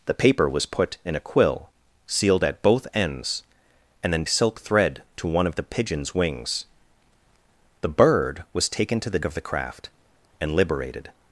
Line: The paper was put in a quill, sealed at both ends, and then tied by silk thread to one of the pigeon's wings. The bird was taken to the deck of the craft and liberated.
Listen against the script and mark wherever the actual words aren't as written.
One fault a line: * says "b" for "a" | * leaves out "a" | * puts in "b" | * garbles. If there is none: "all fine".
* leaves out "tied by"
* leaves out "deck"